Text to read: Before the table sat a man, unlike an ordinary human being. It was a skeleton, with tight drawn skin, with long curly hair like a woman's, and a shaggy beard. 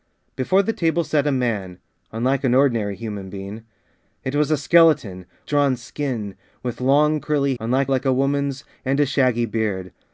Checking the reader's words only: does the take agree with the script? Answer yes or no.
no